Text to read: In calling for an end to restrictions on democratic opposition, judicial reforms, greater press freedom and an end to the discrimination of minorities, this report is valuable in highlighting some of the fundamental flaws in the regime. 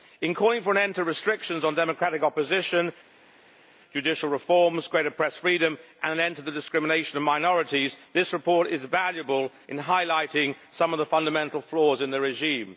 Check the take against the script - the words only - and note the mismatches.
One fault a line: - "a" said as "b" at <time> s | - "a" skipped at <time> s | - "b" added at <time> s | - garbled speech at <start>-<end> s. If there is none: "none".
none